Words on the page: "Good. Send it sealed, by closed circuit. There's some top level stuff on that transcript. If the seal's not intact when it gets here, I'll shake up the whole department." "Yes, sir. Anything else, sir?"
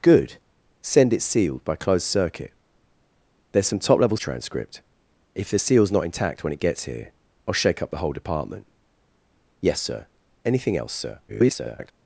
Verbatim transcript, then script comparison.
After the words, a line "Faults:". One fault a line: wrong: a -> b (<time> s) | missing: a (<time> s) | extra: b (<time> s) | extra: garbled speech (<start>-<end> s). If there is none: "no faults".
"Good. Send it sealed, by closed circuit. There's some top level transcript. If the seal's not intact when it gets here, I'll shake up the whole department." "Yes, sir. Anything else, sir?" [garbled]
Faults:
missing: stuff on that (4.2 s)
extra: garbled speech (11.3-11.9 s)